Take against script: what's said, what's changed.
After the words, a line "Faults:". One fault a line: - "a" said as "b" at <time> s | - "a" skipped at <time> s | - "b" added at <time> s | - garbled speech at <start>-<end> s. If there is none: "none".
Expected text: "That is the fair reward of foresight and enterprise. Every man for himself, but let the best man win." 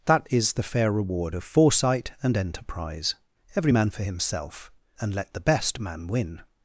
"That is the fair reward of foresight and enterprise. Every man for himself, and let the best man win."
Faults:
- "but" said as "and" at 5.0 s